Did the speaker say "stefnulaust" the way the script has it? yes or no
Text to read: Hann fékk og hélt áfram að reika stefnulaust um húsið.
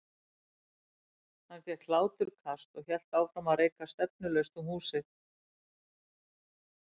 yes